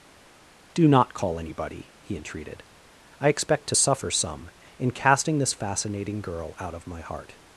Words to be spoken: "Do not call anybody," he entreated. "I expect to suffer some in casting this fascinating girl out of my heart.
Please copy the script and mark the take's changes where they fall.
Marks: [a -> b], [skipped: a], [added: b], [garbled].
"Do not call anybody," he entreated. "I expect to suffer some in casting this fascinating girl out of my heart.